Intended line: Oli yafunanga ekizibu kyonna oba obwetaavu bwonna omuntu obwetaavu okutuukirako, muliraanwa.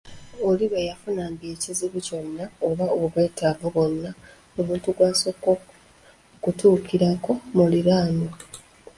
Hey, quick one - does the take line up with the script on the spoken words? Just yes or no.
no